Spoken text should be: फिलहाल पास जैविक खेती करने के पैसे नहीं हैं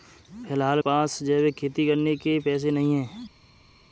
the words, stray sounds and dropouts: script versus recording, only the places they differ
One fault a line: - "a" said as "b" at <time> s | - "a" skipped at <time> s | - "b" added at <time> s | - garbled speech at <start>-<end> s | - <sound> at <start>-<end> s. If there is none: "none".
none